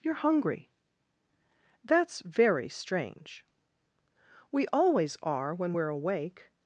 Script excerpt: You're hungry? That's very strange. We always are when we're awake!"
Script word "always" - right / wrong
right